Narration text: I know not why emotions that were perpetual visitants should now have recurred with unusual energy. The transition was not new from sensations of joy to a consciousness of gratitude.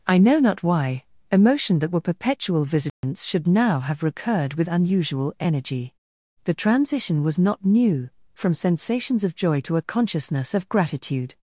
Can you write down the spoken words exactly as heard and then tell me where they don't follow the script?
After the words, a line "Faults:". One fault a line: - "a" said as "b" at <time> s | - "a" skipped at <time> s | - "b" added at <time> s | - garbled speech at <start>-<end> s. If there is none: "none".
I know not why emotion that were perpetual visitants should now have recurred with unusual energy. The transition was not new from sensations of joy to a consciousness of gratitude.
Faults:
- "emotions" said as "emotion" at 1.3 s